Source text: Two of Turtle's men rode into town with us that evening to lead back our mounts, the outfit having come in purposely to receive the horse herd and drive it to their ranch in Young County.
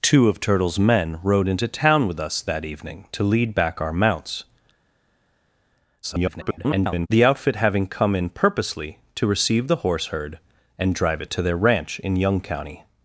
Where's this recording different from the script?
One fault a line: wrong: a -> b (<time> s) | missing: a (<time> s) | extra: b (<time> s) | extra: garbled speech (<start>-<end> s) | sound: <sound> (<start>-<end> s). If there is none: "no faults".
extra: garbled speech (6.0-7.1 s)